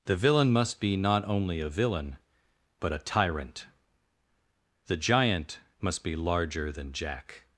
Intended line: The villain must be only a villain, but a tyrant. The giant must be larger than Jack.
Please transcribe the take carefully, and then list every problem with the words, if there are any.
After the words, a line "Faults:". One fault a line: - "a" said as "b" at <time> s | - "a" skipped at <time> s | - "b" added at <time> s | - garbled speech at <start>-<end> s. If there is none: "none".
The villain must be not only a villain, but a tyrant. The giant must be larger than Jack.
Faults:
- "not" added at 1.0 s